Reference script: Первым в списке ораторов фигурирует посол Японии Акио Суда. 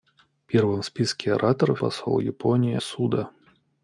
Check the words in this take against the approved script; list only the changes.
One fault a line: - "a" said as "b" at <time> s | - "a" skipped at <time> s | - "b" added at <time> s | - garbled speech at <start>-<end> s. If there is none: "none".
- "фигурирует" skipped at 1.8 s
- "Акио" skipped at 2.8 s